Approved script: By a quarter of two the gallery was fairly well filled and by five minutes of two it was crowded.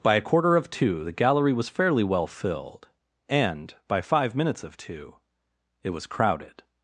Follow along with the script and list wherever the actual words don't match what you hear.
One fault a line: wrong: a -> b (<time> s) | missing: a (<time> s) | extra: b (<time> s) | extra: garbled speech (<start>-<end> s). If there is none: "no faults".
no faults